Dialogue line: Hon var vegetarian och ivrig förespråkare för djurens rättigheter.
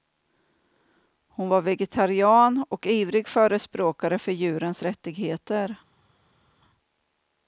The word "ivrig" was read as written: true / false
true